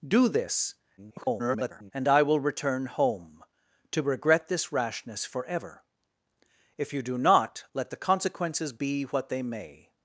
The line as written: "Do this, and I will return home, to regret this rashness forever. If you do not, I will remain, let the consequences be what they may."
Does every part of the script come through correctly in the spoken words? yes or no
no